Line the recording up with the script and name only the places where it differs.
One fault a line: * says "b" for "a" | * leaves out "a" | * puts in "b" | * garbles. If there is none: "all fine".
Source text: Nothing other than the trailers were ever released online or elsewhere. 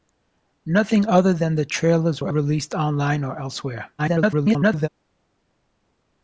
* leaves out "ever"
* garbles